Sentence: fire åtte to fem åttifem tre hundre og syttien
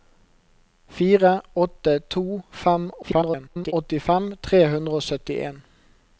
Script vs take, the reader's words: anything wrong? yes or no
yes